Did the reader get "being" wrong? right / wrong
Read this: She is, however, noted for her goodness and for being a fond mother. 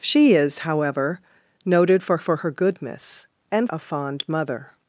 wrong